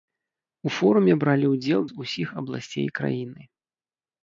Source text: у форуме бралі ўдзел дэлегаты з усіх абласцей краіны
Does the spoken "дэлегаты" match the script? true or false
false